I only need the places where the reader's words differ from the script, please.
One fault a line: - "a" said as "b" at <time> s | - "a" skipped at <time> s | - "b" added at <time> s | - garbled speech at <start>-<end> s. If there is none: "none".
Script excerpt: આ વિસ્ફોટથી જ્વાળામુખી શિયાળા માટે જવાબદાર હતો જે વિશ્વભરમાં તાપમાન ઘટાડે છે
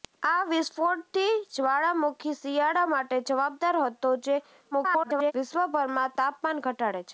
- garbled speech at 4.7-5.3 s